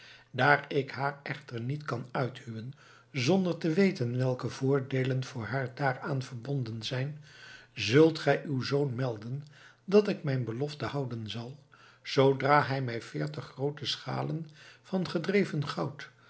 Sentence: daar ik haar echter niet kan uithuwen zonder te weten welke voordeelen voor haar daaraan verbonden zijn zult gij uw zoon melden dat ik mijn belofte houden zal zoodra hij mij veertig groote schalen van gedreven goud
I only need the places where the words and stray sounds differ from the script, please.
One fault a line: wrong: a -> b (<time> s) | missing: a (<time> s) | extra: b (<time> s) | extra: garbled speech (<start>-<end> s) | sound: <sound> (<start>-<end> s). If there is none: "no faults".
no faults